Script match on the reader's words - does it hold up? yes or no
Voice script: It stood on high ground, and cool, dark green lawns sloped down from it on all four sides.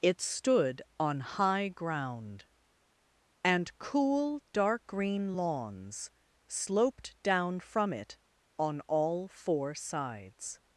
yes